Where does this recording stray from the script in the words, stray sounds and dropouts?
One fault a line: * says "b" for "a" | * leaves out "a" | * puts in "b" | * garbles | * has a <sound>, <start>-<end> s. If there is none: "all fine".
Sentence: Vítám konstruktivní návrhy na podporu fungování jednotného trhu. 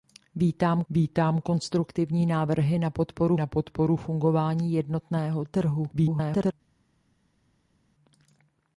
* puts in "vítám"
* puts in "na podporu"
* garbles